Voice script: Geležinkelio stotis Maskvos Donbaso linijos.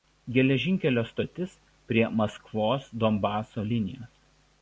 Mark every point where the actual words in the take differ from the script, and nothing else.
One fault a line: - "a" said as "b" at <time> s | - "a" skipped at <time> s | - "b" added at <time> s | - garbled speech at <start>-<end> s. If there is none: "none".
- "prie" added at 1.9 s